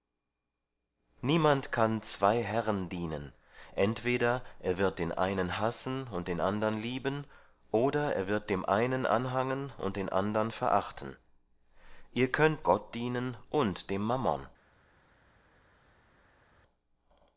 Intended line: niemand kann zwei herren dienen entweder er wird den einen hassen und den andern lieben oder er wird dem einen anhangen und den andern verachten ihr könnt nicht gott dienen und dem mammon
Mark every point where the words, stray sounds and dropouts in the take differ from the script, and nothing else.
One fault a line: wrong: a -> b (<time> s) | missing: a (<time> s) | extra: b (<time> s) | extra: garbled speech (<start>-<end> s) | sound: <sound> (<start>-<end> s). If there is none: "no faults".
missing: nicht (12.7 s)